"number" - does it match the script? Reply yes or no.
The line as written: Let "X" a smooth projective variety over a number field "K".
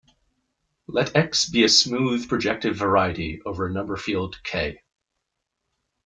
yes